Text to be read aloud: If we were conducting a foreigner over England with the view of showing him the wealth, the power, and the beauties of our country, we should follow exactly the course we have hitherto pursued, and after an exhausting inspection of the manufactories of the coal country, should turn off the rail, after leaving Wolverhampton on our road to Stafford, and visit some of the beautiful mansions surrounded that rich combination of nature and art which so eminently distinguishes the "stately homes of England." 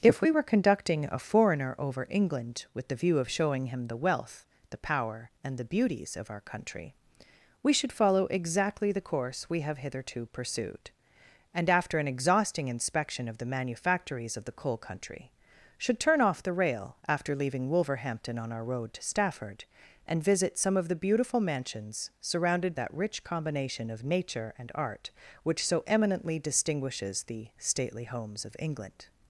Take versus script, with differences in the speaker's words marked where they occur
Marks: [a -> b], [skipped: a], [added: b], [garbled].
If we were conducting a foreigner over England with the view of showing him the wealth, the power, and the beauties of our country, we should follow exactly the course we have hitherto pursued, and after an exhausting inspection of the manufactories of the coal country, should turn off the rail, after leaving Wolverhampton on our road to Stafford, and visit some of the beautiful mansions surrounded that rich combination of nature and art which so eminently distinguishes the "stately homes of England."